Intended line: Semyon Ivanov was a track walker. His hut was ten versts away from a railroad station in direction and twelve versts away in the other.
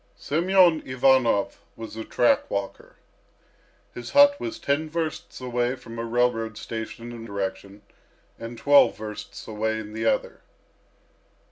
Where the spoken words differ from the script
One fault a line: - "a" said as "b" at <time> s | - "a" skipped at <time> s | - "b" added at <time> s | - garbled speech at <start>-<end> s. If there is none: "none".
none